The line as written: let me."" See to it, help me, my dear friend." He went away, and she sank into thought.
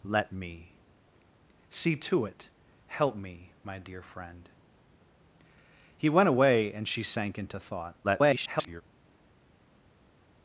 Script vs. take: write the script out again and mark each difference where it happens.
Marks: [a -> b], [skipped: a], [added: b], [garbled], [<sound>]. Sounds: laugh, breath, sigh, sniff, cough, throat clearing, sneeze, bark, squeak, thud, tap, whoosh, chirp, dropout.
let me."" See to it, help me, my dear friend." He went away, and she sank into thought. [garbled]